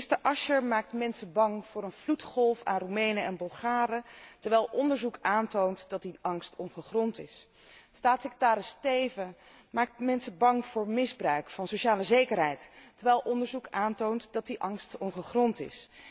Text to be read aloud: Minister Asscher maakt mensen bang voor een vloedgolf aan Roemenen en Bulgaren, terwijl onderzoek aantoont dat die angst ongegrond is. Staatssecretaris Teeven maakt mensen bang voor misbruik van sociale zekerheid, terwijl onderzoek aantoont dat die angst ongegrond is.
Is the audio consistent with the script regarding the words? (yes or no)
yes